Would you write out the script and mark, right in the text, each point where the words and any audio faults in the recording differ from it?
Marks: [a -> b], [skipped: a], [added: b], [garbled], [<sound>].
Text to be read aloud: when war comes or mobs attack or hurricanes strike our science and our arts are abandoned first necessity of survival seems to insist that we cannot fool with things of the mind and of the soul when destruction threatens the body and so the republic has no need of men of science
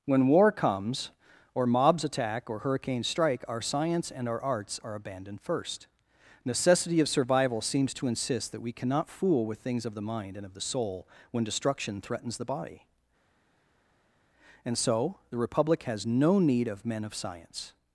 when war comes or mobs attack or hurricanes strike our science and our arts are abandoned first necessity of survival seems to insist that we cannot fool with things of the mind and of the soul when destruction threatens the body and so the republic has no need of men of science